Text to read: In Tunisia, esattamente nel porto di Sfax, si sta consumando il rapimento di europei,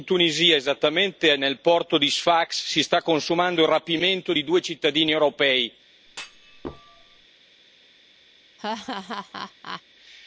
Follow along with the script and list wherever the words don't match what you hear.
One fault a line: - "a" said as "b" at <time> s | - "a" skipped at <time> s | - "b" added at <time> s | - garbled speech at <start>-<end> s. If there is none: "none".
- "due cittadini" added at 4.4 s